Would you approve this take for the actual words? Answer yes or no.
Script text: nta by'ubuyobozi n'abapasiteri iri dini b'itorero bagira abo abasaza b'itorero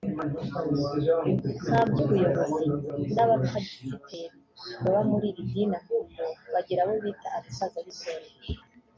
no